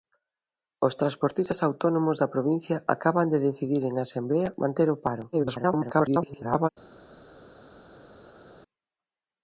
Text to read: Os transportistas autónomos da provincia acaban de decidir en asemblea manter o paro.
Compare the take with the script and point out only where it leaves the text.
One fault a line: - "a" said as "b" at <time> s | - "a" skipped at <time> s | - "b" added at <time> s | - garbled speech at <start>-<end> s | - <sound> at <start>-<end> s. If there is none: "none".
- garbled speech at 5.3-6.7 s